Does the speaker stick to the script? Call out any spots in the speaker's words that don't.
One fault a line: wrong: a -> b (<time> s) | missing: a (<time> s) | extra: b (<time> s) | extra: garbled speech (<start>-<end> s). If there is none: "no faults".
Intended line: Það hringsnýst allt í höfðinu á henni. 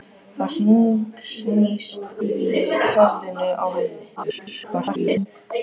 missing: allt (2.2 s)
extra: garbled speech (4.2-5.3 s)